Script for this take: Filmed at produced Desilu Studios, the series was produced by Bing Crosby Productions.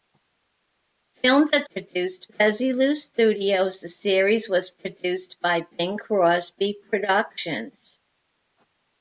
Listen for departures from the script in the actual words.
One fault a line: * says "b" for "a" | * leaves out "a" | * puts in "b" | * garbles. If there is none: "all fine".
all fine